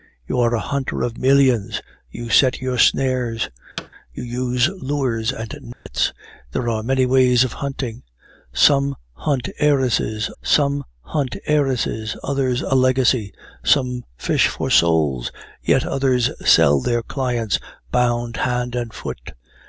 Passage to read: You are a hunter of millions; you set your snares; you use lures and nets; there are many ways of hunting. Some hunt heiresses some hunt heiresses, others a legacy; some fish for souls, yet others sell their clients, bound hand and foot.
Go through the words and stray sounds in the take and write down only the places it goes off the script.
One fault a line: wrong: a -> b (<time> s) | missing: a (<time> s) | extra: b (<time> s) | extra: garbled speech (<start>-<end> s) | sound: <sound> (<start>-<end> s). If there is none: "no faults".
sound: thud (3.8-3.9 s)
sound: dropout (5.7-5.9 s)